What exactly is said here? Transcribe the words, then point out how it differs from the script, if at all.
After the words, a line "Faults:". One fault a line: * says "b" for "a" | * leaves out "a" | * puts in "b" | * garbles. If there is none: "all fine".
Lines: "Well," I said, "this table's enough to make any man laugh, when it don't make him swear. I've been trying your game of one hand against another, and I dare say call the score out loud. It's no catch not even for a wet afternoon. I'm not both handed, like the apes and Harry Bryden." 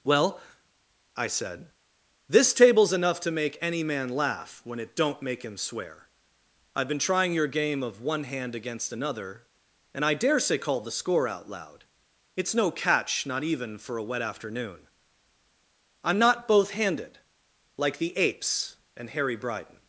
"Well," I said, "this table's enough to make any man laugh, when it don't make him swear. I've been trying your game of one hand against another, and I dare say call the score out loud. It's no catch not even for a wet afternoon. I'm not both handed, like the apes and Harry Bryden."
Faults:
all fine